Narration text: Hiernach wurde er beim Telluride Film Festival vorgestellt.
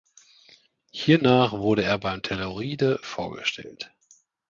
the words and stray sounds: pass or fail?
fail